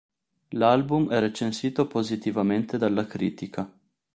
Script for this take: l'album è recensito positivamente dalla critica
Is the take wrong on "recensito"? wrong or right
right